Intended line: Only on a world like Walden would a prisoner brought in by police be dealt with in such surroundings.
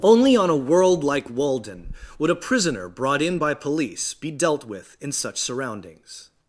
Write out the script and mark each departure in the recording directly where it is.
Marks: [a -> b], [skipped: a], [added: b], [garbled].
Only on a world like Walden would a prisoner brought in by police be dealt with in such surroundings.